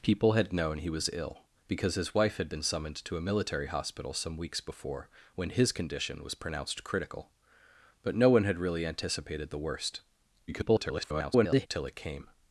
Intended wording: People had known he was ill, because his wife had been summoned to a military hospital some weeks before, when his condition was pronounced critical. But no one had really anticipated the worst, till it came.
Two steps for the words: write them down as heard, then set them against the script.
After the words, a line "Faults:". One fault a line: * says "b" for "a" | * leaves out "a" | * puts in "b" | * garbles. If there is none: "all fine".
People had known he was ill, because his wife had been summoned to a military hospital some weeks before, when his condition was pronounced critical. But no one had really anticipated the worst, [garbled] till it came.
Faults:
* garbles